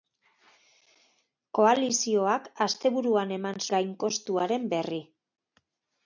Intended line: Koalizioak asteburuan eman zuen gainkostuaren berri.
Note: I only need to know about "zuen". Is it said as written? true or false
false